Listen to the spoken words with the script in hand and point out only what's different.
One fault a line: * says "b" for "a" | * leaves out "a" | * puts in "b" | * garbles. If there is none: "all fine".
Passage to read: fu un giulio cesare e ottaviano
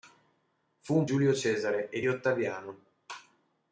all fine